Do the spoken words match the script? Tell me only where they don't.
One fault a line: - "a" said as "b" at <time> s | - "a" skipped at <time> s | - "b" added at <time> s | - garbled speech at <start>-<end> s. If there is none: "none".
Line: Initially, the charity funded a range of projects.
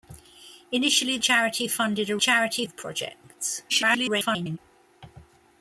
- "the" skipped at 1.2 s
- "range" said as "charity" at 2.2 s
- garbled speech at 3.7-4.6 s